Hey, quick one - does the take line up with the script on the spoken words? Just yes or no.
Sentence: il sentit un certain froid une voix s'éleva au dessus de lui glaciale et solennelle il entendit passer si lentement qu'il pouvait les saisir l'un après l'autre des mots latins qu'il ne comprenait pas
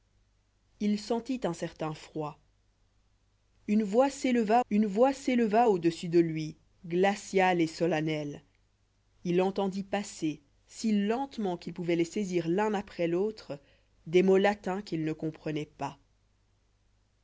no